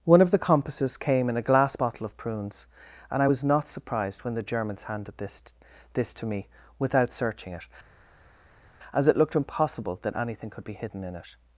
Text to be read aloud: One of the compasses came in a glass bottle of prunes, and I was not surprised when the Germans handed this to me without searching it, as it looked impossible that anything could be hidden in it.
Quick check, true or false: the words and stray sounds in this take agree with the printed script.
false